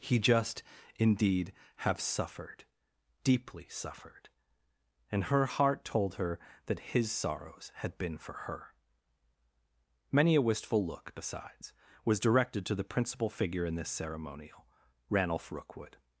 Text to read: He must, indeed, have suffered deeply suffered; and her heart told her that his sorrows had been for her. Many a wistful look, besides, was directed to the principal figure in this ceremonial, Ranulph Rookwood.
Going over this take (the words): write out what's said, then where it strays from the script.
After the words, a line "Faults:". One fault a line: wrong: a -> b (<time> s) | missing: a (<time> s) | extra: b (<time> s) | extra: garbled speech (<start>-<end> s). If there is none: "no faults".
He just, indeed, have suffered deeply suffered; and her heart told her that his sorrows had been for her. Many a wistful look, besides, was directed to the principal figure in this ceremonial, Ranulph Rookwood.
Faults:
wrong: must -> just (0.2 s)